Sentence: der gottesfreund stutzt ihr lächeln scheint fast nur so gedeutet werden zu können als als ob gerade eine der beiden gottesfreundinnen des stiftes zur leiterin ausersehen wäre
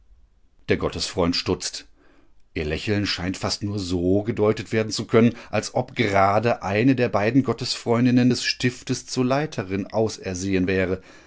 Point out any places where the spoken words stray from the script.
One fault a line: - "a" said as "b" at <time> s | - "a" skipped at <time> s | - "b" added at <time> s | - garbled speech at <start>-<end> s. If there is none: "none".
- "als" skipped at 5.8 s